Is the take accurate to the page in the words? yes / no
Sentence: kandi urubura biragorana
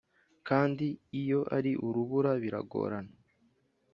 no